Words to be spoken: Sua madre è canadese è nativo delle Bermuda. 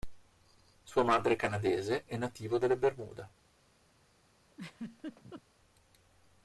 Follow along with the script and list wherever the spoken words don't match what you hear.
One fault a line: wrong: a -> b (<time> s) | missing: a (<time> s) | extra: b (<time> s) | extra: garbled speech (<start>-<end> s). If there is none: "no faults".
no faults